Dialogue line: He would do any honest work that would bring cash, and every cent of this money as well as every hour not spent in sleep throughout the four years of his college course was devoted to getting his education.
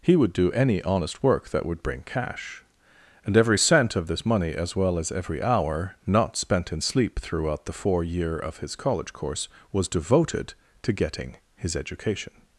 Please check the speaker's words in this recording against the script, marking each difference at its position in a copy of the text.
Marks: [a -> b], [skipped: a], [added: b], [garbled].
He would do any honest work that would bring cash, and every cent of this money as well as every hour not spent in sleep throughout the four [years -> year] of his college course was devoted to getting his education.